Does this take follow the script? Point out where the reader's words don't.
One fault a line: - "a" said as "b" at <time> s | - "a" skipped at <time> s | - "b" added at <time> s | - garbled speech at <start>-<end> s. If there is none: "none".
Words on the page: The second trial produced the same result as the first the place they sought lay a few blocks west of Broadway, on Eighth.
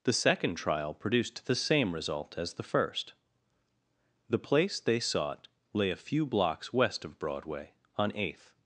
none